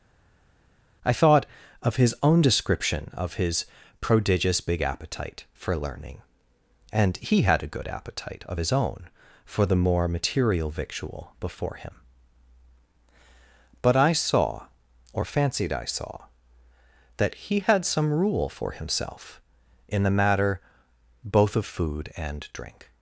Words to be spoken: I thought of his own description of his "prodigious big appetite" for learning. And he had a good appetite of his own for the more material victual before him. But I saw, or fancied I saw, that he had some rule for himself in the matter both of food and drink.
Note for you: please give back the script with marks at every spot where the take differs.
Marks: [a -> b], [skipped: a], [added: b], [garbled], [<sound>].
I thought of his own description of his "prodigious big appetite" for learning. And he had a good appetite of his own for the more material victual before him. But I saw, or fancied I saw, that he had some rule for himself in the matter both of food and drink.